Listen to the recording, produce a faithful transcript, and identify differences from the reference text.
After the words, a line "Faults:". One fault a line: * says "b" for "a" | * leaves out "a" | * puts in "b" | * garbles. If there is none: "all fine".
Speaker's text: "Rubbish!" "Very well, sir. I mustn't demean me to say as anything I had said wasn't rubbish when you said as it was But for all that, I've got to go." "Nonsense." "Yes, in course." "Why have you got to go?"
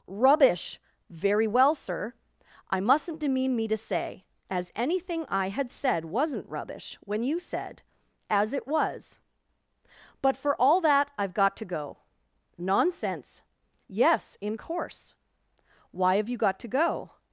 "Rubbish!" "Very well, sir. I mustn't demean me to say as anything I had said wasn't rubbish when you said as it was But for all that, I've got to go." "Nonsense." "Yes, in course." "Why have you got to go?"
Faults:
all fine